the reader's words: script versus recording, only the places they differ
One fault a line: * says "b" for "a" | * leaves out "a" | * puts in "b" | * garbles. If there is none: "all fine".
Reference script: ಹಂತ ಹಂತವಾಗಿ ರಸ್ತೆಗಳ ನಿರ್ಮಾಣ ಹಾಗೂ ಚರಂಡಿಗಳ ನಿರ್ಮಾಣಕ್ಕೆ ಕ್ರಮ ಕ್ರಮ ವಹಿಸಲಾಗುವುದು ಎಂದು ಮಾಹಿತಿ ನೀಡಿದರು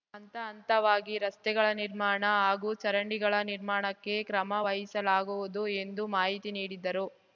* leaves out "ಕ್ರಮ"